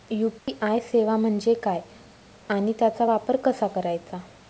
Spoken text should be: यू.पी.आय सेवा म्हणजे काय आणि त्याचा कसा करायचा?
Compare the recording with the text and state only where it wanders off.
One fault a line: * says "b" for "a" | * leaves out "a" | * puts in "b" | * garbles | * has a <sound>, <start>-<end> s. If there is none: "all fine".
* has a dropout, 0.4-0.5 s
* puts in "वापर"